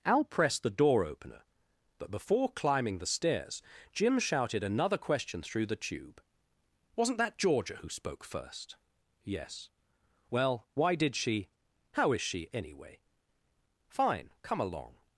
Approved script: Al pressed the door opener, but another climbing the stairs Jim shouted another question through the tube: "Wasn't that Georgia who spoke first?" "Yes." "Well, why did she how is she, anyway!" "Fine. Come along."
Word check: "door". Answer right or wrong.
right